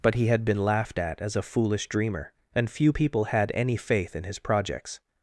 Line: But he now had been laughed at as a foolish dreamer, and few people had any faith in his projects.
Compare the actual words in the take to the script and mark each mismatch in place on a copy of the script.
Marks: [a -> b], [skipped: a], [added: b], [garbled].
But he [skipped: now] had been laughed at as a foolish dreamer, and few people had any faith in his projects.